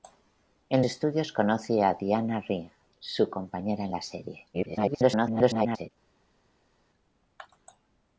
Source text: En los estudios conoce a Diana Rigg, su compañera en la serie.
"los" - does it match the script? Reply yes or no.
no